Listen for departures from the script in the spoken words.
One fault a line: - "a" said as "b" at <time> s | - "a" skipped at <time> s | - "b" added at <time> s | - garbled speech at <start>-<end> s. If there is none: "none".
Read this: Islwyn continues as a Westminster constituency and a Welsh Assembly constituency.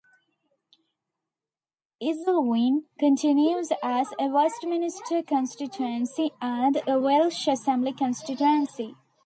none